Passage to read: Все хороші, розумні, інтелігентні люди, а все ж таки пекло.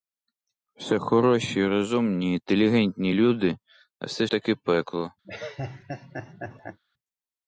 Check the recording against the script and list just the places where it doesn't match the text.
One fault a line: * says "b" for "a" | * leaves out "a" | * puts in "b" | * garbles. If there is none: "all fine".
* leaves out "ж"